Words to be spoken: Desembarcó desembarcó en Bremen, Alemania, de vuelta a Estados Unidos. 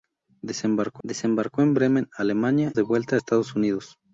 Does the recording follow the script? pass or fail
pass